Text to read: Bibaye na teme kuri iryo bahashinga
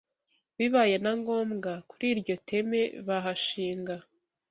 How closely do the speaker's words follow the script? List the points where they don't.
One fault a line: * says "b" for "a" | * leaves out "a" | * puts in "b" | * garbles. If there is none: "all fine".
* says "ngombwa" for "teme"
* puts in "teme"